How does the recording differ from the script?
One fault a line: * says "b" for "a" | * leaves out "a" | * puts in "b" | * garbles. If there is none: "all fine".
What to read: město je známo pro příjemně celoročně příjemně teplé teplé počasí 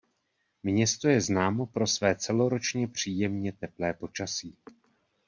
* says "své" for "příjemně"
* leaves out "teplé"